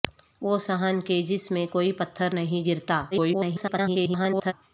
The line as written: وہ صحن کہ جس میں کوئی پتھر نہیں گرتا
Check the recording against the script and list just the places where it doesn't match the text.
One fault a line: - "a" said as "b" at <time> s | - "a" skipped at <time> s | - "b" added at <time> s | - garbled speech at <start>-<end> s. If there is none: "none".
- garbled speech at 3.1-4.5 s